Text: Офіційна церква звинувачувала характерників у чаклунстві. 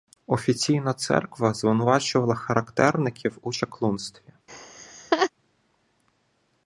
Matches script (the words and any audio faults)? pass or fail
fail